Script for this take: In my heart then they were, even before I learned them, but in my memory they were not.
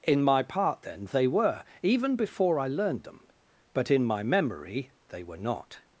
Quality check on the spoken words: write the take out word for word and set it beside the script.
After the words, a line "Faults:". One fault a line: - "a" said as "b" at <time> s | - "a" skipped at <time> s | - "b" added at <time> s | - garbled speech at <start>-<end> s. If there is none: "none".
In my part then they were, even before I learned them, but in my memory they were not.
Faults:
- "heart" said as "part" at 0.4 s